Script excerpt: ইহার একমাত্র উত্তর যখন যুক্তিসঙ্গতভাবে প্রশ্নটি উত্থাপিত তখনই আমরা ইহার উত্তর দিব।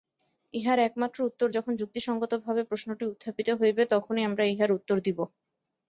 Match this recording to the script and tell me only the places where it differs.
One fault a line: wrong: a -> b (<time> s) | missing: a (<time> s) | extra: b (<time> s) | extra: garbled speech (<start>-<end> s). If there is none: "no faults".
extra: হইবে (3.6 s)